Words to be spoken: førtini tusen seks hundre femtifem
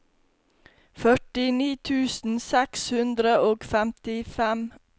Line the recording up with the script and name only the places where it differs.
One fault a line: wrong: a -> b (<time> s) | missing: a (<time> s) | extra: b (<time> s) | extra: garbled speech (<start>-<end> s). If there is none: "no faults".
extra: og (3.5 s)